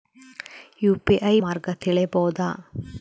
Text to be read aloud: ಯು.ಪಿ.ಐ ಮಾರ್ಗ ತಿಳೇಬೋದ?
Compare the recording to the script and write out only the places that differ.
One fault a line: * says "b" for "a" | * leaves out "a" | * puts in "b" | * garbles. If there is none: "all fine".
all fine